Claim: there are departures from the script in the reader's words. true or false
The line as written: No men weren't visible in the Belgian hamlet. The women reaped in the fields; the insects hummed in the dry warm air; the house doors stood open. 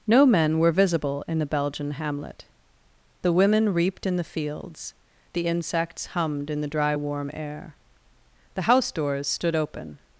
true